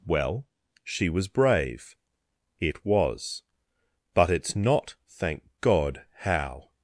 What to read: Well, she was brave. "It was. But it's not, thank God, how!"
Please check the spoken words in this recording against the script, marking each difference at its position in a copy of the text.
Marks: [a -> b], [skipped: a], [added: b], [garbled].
Well, she was brave. "It was. But it's not, thank God, how!"